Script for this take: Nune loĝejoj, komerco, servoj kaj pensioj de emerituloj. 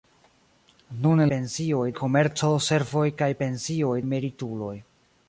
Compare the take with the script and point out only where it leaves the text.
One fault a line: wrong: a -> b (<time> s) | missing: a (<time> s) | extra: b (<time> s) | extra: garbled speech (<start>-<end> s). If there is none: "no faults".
wrong: loĝejoj -> pensioj (1.3 s)
missing: de (4.0 s)